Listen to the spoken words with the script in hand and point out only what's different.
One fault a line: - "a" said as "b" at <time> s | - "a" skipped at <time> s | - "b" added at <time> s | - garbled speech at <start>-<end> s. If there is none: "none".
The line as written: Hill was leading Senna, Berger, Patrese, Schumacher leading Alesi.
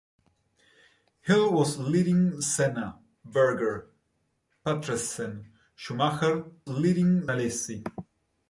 none